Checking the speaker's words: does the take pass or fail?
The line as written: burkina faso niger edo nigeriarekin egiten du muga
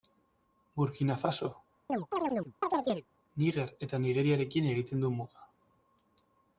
fail